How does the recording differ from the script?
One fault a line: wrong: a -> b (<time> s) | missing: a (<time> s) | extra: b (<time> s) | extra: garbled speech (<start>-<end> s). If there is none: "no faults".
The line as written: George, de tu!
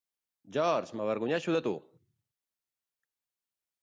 extra: m'avergonyeixo (1.0 s)